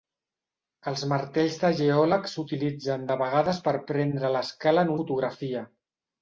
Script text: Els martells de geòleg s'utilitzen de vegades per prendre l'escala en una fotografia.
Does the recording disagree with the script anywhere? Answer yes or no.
yes